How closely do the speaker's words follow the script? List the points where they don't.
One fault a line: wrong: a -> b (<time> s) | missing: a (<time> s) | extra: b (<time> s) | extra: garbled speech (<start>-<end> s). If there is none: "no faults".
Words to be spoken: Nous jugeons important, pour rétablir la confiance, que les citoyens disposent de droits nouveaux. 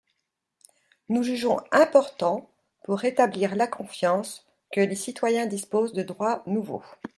no faults